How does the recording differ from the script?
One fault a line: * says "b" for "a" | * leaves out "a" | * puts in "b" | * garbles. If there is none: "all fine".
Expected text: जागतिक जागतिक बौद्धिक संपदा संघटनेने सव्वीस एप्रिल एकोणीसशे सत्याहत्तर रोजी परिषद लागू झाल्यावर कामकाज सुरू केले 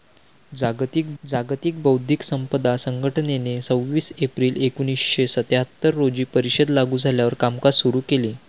all fine